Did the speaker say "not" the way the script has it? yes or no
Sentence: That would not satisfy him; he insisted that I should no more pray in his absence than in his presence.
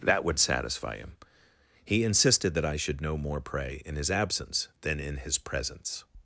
no